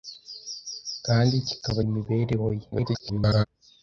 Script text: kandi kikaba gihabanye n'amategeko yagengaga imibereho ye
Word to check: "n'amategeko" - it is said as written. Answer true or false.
false